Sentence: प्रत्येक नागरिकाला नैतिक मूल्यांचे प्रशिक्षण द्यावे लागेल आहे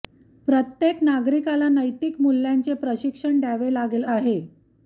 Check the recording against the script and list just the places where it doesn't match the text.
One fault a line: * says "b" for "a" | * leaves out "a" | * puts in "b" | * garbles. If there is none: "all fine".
all fine